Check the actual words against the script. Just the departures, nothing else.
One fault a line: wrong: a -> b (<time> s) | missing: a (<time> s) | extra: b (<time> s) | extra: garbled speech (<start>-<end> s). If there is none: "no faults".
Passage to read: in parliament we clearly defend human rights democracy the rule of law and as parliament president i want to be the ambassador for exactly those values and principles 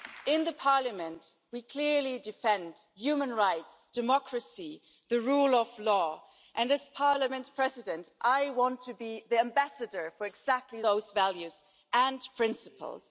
no faults